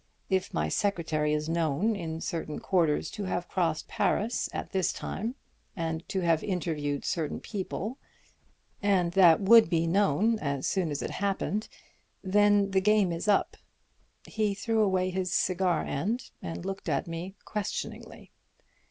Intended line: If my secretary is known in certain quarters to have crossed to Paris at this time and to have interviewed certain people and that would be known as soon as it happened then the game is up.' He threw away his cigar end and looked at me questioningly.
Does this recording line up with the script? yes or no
no